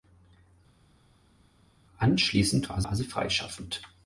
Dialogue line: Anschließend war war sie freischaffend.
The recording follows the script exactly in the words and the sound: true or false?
true